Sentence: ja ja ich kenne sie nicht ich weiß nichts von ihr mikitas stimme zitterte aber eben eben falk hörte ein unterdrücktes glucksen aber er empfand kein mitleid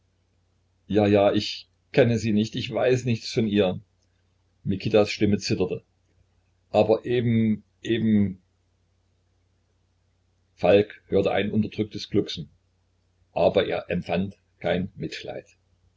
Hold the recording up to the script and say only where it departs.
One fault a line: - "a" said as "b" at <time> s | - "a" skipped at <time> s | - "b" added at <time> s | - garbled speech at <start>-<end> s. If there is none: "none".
none